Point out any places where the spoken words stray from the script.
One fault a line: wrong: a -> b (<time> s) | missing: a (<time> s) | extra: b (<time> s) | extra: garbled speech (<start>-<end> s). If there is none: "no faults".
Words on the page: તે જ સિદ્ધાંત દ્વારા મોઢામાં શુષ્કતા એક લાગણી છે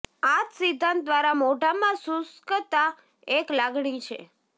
wrong: તે -> આ (0.2 s)